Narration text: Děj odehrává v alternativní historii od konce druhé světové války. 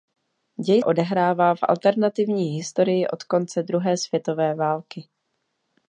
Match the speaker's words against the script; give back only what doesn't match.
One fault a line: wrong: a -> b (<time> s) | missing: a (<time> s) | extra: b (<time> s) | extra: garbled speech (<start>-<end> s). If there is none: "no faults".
no faults